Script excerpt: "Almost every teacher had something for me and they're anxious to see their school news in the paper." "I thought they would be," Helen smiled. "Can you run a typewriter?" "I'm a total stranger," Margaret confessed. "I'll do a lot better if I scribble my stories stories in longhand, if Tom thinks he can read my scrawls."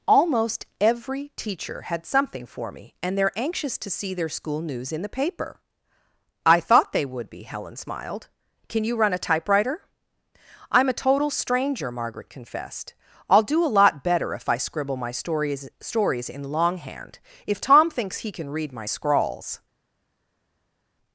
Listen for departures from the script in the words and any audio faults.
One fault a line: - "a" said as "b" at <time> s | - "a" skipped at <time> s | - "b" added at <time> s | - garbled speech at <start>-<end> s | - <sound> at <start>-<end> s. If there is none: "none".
none